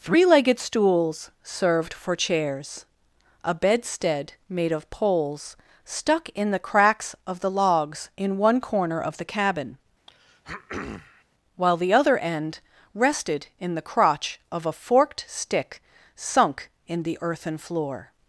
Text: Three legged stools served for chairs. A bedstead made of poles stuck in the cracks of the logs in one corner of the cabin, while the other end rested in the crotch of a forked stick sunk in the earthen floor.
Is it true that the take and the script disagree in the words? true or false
false